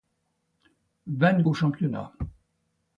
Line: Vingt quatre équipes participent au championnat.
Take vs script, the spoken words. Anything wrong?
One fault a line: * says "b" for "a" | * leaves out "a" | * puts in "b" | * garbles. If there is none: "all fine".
* leaves out "quatre équipes participent"